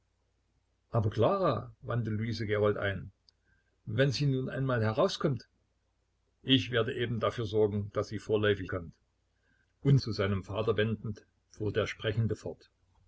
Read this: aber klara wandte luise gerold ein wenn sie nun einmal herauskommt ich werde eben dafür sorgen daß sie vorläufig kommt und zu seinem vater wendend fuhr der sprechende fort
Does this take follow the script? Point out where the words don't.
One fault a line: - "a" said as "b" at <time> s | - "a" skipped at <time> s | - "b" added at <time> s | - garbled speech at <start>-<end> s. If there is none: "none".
none